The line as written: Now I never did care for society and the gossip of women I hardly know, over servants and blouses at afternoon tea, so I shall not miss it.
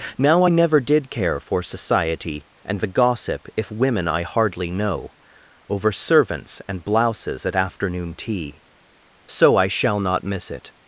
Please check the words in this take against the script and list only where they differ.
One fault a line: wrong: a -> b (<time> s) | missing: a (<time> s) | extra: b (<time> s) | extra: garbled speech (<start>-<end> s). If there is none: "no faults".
wrong: of -> if (3.6 s)